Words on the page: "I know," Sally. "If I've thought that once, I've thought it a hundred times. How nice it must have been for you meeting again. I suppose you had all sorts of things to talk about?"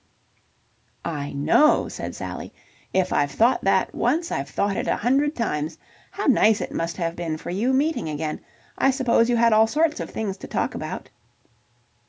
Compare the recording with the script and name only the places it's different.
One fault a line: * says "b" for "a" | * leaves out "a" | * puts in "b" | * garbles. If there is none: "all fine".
* puts in "said"